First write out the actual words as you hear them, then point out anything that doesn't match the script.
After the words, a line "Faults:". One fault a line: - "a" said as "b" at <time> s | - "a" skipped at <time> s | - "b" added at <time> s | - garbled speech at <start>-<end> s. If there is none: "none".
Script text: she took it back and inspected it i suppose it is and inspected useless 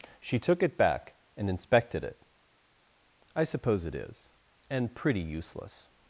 she took it back and inspected it i suppose it is and pretty useless
Faults:
- "inspected" said as "pretty" at 4.9 s